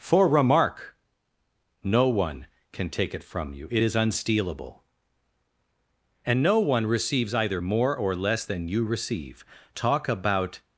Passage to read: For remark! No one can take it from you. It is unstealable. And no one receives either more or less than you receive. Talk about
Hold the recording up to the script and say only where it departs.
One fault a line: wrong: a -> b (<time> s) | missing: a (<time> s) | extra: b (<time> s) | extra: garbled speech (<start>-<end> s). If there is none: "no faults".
no faults